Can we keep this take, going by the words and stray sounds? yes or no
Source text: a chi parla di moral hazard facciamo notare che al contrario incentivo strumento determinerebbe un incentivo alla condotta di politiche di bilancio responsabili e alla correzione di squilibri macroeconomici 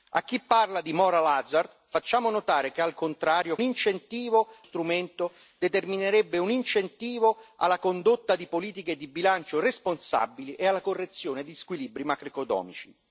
yes